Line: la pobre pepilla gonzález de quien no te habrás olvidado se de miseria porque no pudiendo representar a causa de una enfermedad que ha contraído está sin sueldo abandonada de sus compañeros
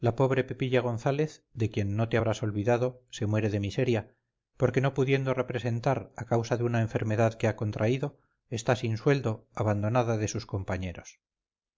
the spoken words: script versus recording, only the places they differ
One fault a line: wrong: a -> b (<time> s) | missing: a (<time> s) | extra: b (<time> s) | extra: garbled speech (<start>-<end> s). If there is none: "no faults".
extra: muere (3.3 s)